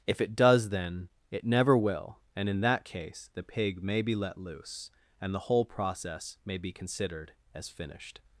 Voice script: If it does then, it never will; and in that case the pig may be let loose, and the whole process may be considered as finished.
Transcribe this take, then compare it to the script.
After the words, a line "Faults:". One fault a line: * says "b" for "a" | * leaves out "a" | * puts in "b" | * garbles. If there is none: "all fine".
If it does then, it never will; and in that case the pig may be let loose, and the whole process may be considered as finished.
Faults:
all fine